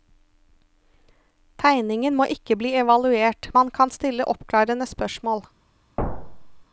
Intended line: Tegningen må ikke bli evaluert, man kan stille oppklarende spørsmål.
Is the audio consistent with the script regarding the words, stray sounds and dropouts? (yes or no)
no